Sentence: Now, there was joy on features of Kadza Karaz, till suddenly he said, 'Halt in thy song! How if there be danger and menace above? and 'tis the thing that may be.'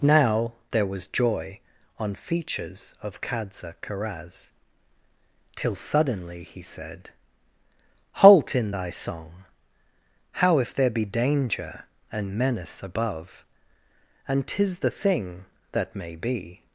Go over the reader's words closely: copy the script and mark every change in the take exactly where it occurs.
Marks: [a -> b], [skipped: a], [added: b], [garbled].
Now, there was joy on features of Kadza Karaz, till suddenly he said, 'Halt in thy song! How if there be danger and menace above? and 'tis the thing that may be.'